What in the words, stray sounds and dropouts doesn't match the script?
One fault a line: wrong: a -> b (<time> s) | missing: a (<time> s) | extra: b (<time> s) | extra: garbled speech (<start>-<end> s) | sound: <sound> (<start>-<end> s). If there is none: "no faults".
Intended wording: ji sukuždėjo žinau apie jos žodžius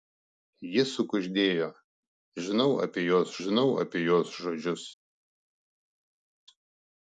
extra: žinau apie jos (3.4 s)